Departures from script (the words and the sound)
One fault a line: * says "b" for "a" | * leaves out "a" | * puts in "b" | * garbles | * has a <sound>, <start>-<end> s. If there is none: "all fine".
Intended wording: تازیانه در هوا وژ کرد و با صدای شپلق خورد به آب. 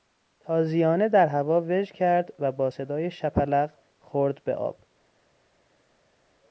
all fine